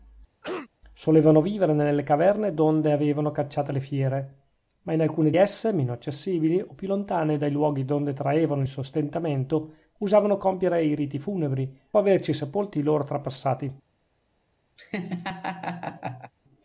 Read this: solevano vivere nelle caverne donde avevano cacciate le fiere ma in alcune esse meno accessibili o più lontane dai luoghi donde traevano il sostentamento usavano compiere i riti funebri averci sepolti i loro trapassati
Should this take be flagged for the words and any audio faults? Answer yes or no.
yes